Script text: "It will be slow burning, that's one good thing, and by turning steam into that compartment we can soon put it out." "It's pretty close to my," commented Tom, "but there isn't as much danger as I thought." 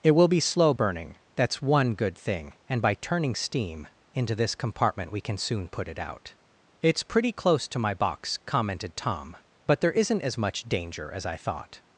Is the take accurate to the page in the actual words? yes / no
no